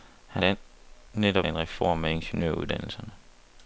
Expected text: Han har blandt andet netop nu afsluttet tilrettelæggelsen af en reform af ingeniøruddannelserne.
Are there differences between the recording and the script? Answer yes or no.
yes